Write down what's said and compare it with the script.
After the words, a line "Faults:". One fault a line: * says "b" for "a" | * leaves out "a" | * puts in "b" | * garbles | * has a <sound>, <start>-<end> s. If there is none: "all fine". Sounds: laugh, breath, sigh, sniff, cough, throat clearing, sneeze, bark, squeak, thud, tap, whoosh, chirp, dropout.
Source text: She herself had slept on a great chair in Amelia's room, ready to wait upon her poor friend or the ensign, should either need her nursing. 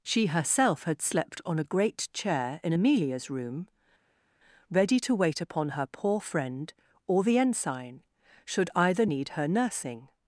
She herself had slept on a great chair in Amelia's room, ready to wait upon her poor friend or the ensign, should either need her nursing.
Faults:
all fine